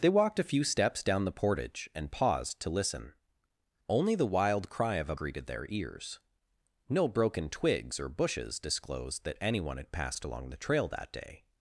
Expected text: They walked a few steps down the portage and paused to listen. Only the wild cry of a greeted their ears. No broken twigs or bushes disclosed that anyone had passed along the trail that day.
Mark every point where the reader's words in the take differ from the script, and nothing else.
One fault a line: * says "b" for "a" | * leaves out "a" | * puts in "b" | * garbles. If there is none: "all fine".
all fine